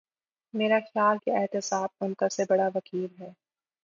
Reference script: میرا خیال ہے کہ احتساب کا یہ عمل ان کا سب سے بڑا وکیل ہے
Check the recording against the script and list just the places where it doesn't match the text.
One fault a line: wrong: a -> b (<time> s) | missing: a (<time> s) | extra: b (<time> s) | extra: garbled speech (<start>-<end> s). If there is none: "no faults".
missing: ہے (1.2 s)
missing: کا یہ عمل (2.0 s)
missing: سب (2.3 s)